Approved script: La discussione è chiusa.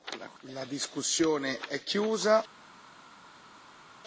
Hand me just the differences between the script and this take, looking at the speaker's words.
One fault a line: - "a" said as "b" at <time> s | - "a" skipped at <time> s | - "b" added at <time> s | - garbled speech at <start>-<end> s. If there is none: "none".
none